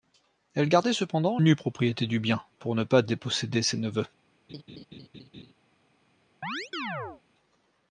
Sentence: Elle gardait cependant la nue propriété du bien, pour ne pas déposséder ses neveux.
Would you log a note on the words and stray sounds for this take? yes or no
yes